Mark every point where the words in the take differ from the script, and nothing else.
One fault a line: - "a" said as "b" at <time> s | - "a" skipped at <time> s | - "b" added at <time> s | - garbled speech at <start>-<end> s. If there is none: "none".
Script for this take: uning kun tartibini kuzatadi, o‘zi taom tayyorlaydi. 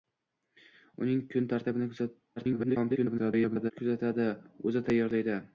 - garbled speech at 2.4-3.7 s
- "taom" skipped at 4.8 s